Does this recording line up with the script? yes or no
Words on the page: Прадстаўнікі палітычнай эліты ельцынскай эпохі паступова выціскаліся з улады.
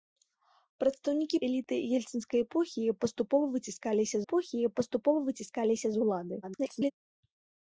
no